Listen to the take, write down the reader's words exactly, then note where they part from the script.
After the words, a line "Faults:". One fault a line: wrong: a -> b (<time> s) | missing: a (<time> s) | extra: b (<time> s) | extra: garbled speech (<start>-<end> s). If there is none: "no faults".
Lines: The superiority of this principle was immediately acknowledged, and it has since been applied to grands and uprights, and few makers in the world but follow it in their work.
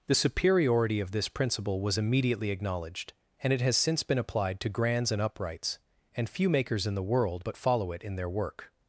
The superiority of this principle was immediately acknowledged, and it has since been applied to grands and uprights, and few makers in the world but follow it in their work.
Faults:
no faults